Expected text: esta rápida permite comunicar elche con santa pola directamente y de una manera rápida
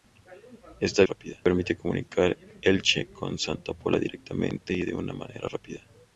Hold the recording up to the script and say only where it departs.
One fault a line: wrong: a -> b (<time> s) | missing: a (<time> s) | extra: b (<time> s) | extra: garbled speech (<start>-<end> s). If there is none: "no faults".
no faults